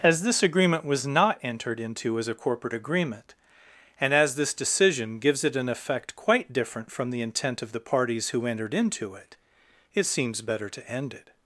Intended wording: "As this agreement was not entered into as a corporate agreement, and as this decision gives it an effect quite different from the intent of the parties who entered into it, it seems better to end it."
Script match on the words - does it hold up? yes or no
yes